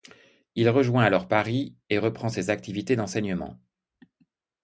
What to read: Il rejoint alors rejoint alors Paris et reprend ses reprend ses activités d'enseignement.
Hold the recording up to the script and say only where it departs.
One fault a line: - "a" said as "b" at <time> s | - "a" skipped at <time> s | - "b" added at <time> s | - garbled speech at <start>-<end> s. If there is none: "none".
- "rejoint alors" skipped at 1.3 s
- "reprend ses" skipped at 2.5 s